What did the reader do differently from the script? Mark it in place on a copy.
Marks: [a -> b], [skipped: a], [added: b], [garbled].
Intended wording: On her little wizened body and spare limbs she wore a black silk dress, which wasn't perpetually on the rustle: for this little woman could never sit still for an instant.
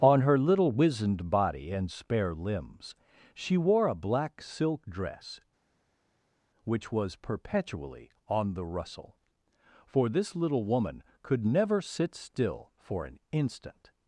On her little wizened body and spare limbs she wore a black silk dress, which [wasn't -> was] perpetually on the rustle: for this little woman could never sit still for an instant.